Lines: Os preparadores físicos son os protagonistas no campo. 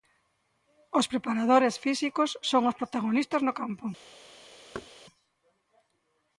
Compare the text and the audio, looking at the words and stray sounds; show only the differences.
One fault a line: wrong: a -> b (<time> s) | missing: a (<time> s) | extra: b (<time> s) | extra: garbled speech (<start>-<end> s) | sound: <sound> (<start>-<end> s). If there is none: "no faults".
sound: thud (4.7-4.9 s)